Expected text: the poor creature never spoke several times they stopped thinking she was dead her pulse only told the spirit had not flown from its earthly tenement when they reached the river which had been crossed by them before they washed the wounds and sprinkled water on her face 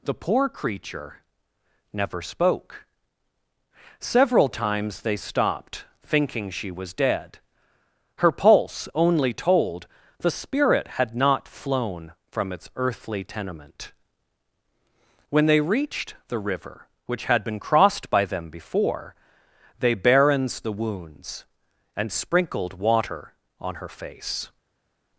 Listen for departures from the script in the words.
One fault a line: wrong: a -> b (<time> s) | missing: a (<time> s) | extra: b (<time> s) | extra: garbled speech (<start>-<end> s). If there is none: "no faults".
wrong: washed -> barrens (19.9 s)